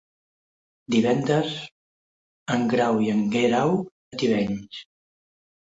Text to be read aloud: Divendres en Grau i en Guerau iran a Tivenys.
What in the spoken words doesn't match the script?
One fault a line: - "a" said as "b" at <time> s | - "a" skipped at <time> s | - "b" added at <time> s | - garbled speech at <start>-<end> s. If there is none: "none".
- "iran" skipped at 3.7 s